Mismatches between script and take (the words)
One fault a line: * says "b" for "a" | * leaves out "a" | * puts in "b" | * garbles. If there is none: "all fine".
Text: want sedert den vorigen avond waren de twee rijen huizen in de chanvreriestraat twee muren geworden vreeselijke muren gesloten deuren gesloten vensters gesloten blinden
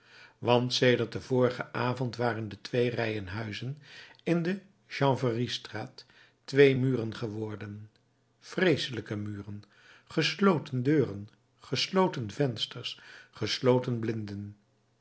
all fine